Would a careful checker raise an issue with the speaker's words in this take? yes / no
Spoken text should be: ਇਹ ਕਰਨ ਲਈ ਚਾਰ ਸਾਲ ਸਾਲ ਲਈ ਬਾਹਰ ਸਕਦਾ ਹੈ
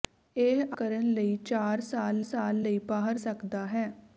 no